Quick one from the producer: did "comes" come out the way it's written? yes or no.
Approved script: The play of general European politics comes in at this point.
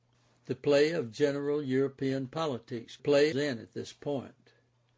no